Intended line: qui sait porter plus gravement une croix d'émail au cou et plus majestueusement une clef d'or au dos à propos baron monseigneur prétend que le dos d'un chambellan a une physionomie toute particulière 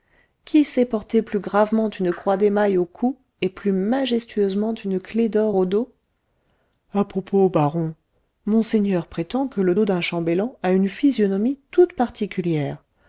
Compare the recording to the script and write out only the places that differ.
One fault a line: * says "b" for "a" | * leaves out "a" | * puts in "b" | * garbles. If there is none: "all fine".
all fine